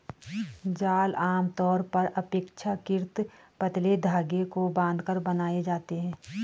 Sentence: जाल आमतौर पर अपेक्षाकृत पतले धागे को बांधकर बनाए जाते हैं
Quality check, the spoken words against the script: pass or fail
pass